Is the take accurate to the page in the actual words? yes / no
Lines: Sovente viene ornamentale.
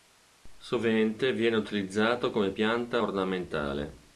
no